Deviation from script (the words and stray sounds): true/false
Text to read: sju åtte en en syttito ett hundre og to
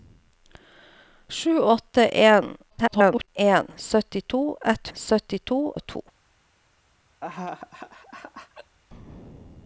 true